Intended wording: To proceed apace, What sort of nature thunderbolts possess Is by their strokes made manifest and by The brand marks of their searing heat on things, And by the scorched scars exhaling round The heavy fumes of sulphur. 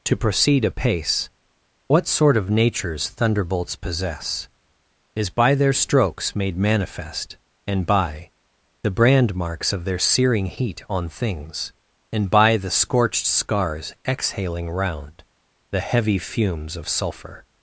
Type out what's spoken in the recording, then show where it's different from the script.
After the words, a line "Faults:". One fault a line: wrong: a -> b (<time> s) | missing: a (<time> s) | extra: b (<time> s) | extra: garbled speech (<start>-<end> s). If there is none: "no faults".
To proceed apace, What sort of natures thunderbolts possess Is by their strokes made manifest and by The brand marks of their searing heat on things, And by the scorched scars exhaling round The heavy fumes of sulphur.
Faults:
wrong: nature -> natures (2.5 s)